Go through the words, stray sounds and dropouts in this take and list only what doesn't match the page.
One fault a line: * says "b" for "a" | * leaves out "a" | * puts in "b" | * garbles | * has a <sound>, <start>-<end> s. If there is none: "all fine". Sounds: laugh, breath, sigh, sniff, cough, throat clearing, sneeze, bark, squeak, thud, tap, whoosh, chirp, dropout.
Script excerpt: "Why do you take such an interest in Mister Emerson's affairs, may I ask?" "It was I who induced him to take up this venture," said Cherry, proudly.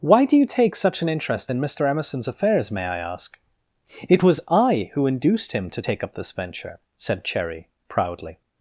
all fine